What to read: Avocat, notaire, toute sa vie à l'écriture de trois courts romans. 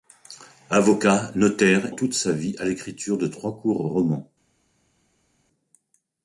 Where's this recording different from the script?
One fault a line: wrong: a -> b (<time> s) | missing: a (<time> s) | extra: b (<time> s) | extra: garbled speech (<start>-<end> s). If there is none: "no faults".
no faults